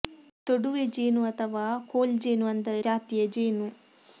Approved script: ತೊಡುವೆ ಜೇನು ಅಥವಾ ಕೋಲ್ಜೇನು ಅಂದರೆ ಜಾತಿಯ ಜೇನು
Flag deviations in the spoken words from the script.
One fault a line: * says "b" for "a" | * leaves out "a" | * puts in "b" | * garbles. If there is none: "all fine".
all fine